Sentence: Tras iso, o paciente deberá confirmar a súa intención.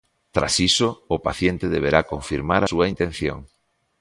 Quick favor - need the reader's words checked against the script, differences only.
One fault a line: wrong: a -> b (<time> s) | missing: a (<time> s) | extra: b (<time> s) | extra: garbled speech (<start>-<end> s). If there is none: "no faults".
missing: a (2.6 s)